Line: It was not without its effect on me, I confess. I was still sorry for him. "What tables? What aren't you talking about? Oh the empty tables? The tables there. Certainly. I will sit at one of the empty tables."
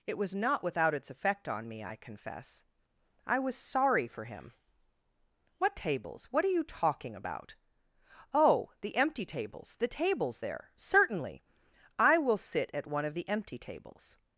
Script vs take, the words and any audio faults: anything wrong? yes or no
yes